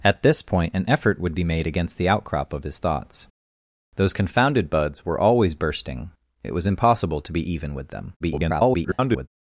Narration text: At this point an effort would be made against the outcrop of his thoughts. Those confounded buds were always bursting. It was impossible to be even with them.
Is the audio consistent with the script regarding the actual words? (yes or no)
no